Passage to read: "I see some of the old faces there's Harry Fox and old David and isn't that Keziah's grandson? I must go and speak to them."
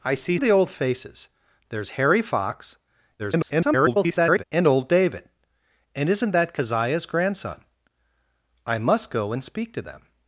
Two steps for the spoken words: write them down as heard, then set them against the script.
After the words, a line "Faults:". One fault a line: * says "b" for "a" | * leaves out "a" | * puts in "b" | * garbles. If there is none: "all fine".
"I see of the old faces there's Harry Fox [garbled] and old David and isn't that Keziah's grandson? I must go and speak to them."
Faults:
* leaves out "some"
* garbles